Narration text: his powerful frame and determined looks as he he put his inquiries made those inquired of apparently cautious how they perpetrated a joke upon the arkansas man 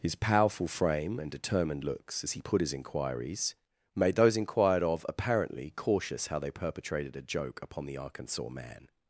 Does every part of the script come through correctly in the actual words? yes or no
no